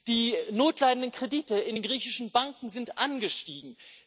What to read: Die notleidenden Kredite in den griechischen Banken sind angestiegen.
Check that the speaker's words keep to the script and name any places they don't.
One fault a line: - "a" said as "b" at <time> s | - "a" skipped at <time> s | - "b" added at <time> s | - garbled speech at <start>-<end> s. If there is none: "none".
none